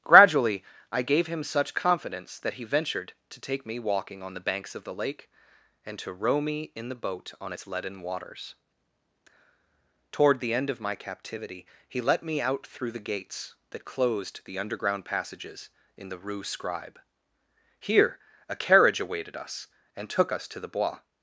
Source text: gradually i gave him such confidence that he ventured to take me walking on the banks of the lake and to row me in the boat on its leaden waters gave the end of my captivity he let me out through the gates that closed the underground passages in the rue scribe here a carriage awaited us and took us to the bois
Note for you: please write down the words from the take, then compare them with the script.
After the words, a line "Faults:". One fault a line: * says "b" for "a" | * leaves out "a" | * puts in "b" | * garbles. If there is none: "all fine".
gradually i gave him such confidence that he ventured to take me walking on the banks of the lake and to row me in the boat on its leaden waters toward the end of my captivity he let me out through the gates that closed the underground passages in the rue scribe here a carriage awaited us and took us to the bois
Faults:
* says "toward" for "gave"